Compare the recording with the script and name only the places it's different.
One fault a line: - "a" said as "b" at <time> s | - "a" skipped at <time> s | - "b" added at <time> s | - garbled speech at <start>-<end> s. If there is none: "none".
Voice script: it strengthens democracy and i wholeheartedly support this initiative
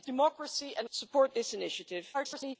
- "strengthens" skipped at 0.1 s
- "i wholeheartedly" skipped at 0.9 s
- garbled speech at 2.1-2.6 s